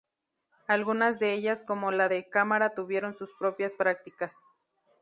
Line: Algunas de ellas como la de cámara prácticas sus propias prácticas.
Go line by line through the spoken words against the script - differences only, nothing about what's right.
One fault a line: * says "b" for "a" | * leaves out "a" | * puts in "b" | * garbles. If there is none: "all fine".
* says "tuvieron" for "prácticas"